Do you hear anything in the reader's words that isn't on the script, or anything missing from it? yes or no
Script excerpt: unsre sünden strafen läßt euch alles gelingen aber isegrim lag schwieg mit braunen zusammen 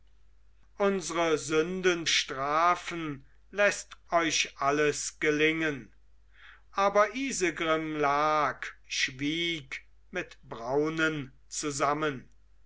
no